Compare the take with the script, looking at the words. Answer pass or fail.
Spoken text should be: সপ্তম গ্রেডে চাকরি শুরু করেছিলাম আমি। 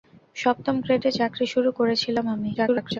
fail